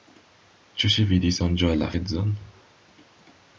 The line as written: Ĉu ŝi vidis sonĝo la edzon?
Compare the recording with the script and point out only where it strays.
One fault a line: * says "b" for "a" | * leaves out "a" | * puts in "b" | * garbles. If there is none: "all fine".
all fine